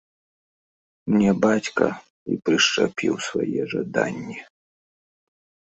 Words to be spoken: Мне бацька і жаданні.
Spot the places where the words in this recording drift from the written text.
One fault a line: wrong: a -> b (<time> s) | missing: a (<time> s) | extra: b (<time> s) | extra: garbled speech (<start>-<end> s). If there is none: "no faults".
extra: прышчапіў свае (2.5 s)